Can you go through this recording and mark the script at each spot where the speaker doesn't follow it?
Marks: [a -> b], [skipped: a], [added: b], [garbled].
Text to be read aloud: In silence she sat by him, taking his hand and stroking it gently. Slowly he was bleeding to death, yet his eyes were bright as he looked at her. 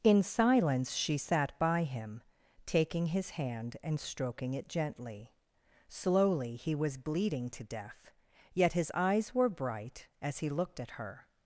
In silence she sat by him, taking his hand and stroking it gently. Slowly he was bleeding to death, yet his eyes were bright as he looked at her.